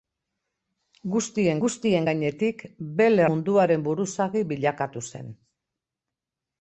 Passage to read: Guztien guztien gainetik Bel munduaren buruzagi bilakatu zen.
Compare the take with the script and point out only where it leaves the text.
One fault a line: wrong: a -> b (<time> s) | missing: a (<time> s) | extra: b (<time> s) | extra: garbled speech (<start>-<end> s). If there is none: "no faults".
no faults